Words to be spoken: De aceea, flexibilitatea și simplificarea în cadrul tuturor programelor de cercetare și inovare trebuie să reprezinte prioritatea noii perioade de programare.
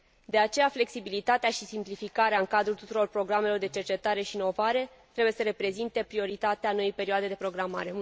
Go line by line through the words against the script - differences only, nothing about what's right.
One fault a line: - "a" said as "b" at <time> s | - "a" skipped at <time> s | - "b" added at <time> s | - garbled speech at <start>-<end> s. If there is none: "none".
none